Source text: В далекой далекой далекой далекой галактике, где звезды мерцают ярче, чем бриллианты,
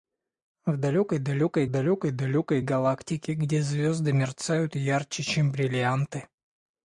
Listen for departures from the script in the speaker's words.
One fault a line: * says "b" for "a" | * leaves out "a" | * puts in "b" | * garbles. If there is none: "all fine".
all fine